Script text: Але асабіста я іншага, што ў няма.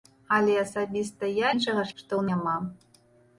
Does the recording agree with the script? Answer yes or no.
yes